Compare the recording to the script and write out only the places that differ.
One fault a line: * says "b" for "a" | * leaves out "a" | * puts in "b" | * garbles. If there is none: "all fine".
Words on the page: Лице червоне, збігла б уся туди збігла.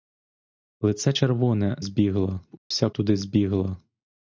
all fine